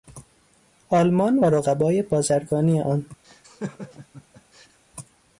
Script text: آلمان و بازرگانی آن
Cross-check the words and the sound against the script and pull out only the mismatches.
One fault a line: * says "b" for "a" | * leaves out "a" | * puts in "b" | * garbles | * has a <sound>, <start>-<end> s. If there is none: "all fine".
* puts in "رقبای"
* has a laugh, 3.2-4.8 s